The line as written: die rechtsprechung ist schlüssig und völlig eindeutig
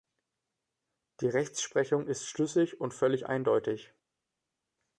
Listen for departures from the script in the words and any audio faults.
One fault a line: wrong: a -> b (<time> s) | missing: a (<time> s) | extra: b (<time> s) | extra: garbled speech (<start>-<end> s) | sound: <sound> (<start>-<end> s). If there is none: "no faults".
no faults